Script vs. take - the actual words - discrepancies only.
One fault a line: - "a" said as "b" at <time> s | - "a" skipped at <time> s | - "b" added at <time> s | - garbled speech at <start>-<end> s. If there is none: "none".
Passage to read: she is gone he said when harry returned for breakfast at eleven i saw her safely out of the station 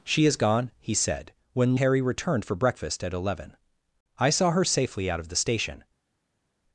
none